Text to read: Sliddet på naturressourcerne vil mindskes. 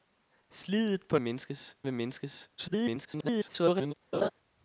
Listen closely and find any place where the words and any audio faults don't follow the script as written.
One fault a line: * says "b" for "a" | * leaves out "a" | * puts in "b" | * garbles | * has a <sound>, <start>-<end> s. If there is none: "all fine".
* says "mindskes" for "naturressourcerne"
* garbles
* has a laugh, 4.1-4.3 s